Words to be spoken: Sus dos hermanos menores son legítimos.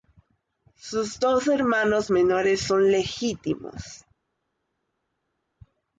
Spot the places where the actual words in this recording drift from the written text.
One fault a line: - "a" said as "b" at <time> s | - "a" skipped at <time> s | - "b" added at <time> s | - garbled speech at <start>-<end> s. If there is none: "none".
none